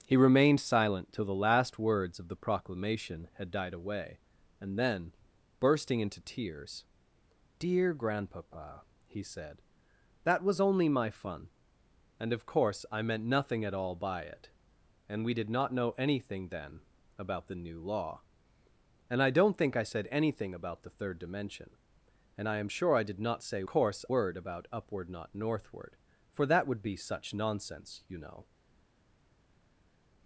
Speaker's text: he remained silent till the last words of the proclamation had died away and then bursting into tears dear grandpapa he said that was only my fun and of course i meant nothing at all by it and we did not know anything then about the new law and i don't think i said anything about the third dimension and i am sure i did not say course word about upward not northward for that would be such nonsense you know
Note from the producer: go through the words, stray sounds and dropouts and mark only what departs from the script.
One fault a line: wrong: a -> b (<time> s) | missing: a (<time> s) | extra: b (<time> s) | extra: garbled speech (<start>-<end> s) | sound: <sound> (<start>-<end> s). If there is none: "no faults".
no faults